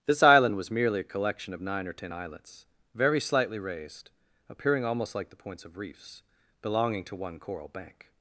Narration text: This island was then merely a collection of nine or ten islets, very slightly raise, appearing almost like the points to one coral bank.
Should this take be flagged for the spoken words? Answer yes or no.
yes